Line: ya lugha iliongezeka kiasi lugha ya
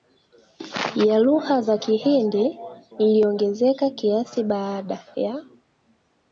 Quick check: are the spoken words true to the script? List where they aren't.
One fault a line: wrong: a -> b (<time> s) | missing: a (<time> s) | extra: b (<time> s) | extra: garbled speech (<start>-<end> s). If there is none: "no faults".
extra: za kihindi (1.6 s)
wrong: lugha -> baada (4.4 s)